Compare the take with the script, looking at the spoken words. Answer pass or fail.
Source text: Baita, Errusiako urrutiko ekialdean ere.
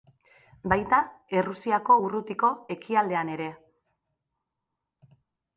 pass